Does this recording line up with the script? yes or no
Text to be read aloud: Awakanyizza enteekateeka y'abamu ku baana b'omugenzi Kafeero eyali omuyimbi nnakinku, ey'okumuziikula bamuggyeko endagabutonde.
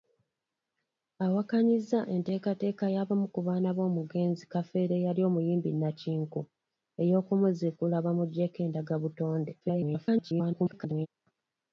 no